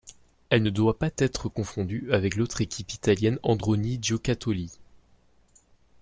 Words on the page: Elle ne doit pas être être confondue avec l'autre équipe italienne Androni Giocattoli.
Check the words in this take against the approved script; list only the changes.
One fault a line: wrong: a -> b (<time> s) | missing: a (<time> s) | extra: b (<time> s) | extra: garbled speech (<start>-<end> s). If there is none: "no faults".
missing: être (1.5 s)